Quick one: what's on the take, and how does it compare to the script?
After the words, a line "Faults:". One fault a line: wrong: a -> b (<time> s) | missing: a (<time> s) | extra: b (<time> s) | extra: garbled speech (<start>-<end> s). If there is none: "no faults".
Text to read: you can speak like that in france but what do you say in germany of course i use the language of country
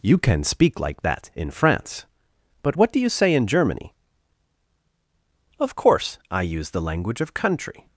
you can speak like that in france but what do you say in germany of course i use the language of country
Faults:
no faults